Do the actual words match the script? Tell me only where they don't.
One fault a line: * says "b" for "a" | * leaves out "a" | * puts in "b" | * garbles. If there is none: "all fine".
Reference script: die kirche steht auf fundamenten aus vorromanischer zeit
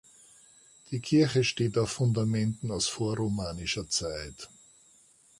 all fine